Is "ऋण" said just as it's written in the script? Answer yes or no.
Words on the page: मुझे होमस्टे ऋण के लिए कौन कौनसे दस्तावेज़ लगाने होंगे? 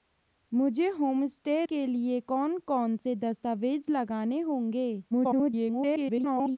no